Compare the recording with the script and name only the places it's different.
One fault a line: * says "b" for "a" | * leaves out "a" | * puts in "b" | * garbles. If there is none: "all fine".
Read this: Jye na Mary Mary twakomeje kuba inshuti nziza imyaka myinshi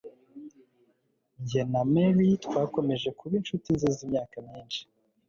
* leaves out "Mary"